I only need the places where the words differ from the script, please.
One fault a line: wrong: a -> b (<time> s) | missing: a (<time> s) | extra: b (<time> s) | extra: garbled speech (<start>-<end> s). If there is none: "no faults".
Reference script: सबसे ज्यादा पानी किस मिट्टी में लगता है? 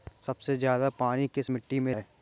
missing: लगता (1.9 s)